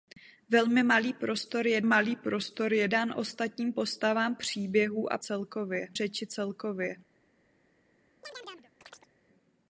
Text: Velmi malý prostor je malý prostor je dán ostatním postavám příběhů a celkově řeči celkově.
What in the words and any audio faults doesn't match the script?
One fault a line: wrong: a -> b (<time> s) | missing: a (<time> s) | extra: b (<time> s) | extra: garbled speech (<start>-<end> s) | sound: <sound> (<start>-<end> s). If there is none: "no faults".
sound: chirp (8.2-9.1 s)